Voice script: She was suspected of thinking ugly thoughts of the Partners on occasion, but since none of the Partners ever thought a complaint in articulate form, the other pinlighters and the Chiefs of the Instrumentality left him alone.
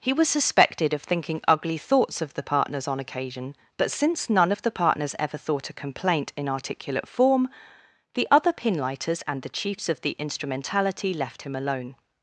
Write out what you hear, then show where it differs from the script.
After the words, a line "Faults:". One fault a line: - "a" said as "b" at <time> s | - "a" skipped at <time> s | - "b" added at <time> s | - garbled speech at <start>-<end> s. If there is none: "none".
He was suspected of thinking ugly thoughts of the Partners on occasion, but since none of the Partners ever thought a complaint in articulate form, the other pinlighters and the Chiefs of the Instrumentality left him alone.
Faults:
- "She" said as "He" at 0.0 s